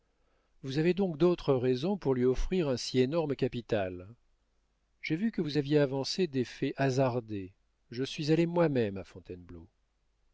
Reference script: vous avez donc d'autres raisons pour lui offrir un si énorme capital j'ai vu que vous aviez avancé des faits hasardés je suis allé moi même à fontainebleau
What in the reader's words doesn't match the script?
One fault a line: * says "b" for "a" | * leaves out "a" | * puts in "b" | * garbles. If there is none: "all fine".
all fine